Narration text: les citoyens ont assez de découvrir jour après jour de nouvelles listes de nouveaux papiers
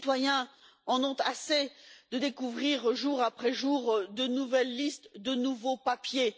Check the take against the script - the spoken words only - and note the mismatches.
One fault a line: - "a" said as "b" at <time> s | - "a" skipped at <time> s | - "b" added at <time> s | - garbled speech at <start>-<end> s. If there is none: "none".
- "en" added at 0.9 s